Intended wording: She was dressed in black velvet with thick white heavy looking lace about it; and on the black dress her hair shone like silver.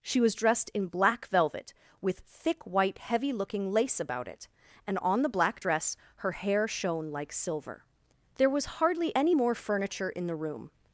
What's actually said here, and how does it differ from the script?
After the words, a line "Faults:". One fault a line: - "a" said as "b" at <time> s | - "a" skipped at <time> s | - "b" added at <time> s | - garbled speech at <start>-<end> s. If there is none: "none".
She was dressed in black velvet with thick white heavy looking lace about it; and on the black dress her hair shone like silver. There was hardly any more furniture in the room
Faults:
- "There was hardly any more furniture in the room" added at 8.4 s